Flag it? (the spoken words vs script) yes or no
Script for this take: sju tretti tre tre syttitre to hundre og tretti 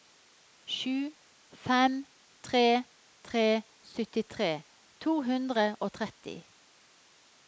yes